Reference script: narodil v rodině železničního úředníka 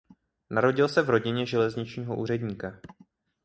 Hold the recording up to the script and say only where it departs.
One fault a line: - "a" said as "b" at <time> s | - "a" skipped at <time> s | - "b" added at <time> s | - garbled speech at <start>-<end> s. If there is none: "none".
- "se" added at 0.9 s